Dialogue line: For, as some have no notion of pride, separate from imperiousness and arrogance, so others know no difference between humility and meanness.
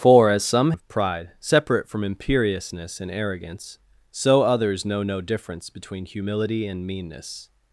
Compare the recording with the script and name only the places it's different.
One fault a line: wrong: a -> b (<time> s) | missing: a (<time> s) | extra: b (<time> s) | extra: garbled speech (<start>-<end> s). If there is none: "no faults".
missing: have no notion (0.7 s)